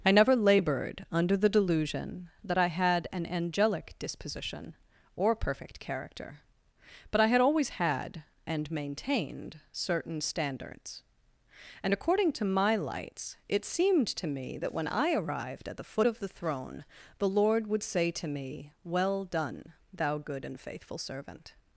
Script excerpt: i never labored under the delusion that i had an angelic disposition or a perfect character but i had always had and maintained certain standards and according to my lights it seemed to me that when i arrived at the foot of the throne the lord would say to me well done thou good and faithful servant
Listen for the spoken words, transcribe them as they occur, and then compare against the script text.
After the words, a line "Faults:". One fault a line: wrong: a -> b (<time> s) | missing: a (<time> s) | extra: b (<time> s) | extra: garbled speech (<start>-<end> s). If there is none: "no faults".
i never labored under the delusion that i had an angelic disposition or perfect character but i had always had and maintained certain standards and according to my lights it seemed to me that when i arrived at the foot of the throne the lord would say to me well done thou good and faithful servant
Faults:
missing: a (5.3 s)